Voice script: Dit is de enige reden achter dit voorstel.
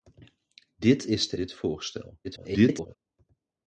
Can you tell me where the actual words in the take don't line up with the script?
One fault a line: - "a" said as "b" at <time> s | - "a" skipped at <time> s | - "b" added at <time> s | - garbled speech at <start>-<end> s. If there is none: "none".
- "enige reden achter" skipped at 1.4 s
- garbled speech at 2.2-3.0 s